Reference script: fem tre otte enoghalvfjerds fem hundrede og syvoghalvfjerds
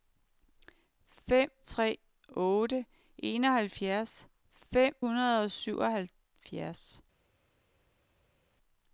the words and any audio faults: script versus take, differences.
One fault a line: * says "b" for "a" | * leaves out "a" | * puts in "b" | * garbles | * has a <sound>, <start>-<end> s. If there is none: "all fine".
all fine